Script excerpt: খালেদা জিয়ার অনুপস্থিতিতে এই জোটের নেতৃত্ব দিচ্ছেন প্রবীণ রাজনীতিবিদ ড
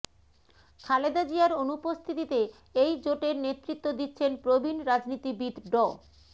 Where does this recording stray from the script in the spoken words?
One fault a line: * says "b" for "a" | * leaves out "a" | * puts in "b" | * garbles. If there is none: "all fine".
all fine